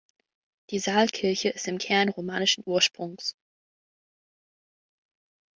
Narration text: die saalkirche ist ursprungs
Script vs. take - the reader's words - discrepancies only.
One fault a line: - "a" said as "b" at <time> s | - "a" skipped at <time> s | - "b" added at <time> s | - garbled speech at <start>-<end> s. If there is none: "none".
- "im kern romanischen" added at 1.7 s